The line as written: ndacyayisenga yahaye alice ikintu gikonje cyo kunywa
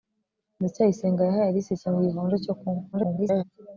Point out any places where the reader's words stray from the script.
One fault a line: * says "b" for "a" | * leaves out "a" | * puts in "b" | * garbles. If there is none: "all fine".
* garbles